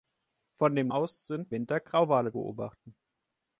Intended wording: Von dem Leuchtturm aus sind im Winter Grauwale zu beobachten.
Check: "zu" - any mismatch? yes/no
yes